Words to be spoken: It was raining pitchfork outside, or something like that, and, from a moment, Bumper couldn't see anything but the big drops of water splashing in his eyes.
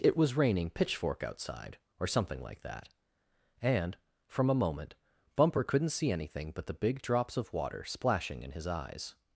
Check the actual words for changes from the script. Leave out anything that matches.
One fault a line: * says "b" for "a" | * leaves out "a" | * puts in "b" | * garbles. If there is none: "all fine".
all fine